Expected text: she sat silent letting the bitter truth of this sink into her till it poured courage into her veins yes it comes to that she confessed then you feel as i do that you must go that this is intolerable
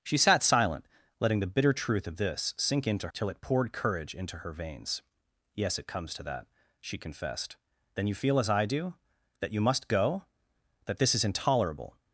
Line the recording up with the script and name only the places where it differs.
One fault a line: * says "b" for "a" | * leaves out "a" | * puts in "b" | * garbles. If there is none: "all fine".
* leaves out "her"